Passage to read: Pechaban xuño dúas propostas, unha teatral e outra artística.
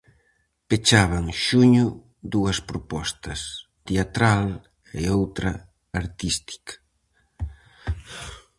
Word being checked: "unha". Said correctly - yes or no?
no